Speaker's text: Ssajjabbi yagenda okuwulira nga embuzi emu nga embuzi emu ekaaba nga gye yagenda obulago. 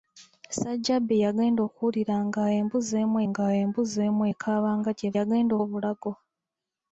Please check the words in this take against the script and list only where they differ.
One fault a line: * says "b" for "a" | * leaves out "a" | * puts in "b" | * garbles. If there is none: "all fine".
all fine